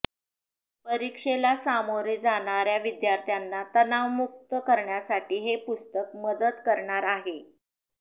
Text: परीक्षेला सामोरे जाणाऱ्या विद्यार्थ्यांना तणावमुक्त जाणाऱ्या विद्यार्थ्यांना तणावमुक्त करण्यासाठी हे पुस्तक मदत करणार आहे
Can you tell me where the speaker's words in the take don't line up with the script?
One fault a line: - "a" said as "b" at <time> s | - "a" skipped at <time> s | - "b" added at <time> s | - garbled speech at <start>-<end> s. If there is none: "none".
- "जाणाऱ्या विद्यार्थ्यांना तणावमुक्त" skipped at 4.5 s